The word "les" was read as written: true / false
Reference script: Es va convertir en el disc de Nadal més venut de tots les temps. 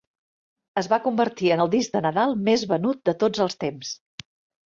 false